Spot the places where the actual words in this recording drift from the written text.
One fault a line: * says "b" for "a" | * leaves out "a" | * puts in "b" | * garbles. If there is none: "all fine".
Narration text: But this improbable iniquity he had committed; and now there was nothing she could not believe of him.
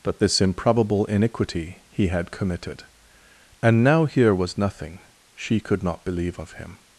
* says "here" for "there"